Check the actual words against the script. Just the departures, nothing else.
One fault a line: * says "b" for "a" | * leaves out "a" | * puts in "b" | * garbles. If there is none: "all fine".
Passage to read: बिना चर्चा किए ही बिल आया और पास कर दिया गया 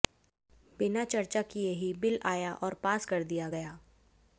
all fine